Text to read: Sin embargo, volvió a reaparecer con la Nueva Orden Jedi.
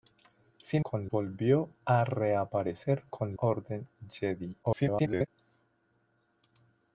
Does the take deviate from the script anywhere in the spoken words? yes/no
yes